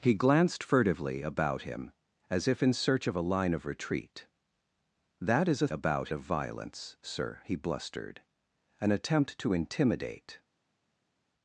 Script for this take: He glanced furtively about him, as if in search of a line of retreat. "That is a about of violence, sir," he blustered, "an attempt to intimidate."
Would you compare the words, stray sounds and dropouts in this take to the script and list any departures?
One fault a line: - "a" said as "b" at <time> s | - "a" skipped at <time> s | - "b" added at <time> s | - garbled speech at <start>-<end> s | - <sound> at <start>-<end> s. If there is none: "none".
none